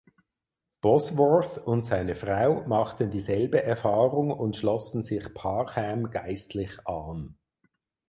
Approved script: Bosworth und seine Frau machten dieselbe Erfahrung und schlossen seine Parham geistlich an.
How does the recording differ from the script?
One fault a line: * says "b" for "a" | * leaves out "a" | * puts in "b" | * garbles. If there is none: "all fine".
* says "sich" for "seine"